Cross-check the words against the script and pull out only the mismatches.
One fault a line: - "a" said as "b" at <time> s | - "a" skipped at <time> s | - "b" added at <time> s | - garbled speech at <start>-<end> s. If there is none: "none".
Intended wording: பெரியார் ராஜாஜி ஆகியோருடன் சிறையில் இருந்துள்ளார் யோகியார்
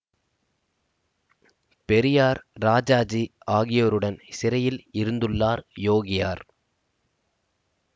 none